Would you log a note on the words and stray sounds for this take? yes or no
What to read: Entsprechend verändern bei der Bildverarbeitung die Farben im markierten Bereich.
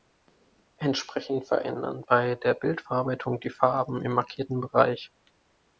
no